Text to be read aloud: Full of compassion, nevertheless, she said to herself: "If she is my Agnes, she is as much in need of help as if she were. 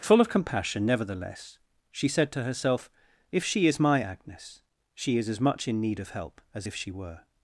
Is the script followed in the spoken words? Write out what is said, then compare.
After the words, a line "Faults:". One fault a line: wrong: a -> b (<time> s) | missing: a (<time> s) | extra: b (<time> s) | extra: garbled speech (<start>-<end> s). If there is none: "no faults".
Full of compassion, nevertheless, she said to herself: "If she is my Agnes, she is as much in need of help as if she were.
Faults:
no faults